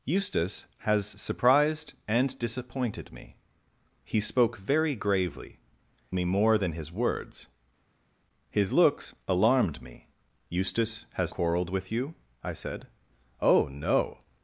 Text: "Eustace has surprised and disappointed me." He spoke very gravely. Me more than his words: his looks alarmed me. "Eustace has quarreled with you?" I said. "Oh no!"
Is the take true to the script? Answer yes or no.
yes